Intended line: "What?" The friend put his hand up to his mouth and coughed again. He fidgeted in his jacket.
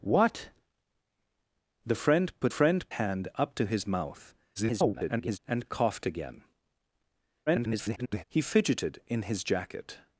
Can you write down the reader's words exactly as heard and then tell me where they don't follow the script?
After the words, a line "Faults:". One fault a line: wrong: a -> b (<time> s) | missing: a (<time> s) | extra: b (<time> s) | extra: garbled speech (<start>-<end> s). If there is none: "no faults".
"What?" The friend put friend hand up to his mouth [garbled] and coughed again. [garbled] He fidgeted in his jacket.
Faults:
wrong: his -> friend (2.5 s)
extra: garbled speech (4.6-5.4 s)
extra: garbled speech (7.5-8.2 s)